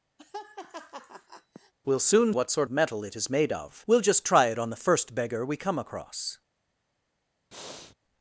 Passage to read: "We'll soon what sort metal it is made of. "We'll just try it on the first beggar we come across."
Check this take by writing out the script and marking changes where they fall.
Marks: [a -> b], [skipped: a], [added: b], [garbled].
"We'll soon what sort metal it is made of. "We'll just try it on the first beggar we come across."